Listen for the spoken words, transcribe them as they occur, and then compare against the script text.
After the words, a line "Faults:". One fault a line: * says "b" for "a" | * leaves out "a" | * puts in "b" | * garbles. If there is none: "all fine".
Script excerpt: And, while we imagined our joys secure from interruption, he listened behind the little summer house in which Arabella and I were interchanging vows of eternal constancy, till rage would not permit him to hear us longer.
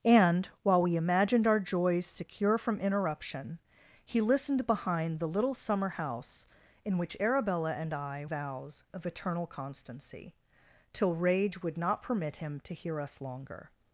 And, while we imagined our joys secure from interruption, he listened behind the little summer house in which Arabella and I vows of eternal constancy, till rage would not permit him to hear us longer.
Faults:
* leaves out "were interchanging"